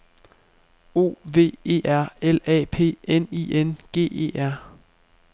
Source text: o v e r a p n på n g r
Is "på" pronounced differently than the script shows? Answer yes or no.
yes